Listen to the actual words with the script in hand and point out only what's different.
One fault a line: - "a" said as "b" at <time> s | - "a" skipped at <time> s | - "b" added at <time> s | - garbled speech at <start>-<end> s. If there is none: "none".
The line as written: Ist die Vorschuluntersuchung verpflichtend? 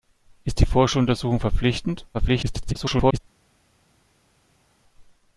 - garbled speech at 2.1-3.2 s